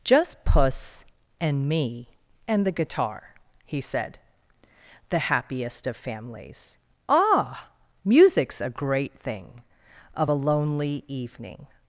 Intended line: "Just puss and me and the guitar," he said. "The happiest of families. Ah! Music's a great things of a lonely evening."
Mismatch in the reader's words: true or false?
true